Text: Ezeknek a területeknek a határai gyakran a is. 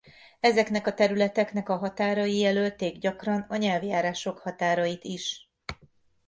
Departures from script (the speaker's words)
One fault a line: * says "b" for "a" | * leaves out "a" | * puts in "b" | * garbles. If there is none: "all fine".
* puts in "jelölték"
* puts in "nyelvjárások határait"